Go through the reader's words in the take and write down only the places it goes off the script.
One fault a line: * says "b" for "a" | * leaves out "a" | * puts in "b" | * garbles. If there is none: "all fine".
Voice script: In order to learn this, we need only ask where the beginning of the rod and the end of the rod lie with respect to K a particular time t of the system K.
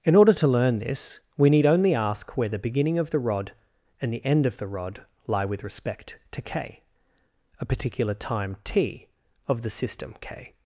all fine